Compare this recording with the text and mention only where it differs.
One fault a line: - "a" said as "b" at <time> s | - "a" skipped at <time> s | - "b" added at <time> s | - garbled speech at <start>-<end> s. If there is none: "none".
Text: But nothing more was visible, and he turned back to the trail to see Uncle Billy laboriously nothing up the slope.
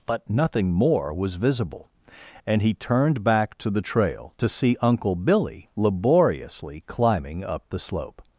- "nothing" said as "climbing" at 6.9 s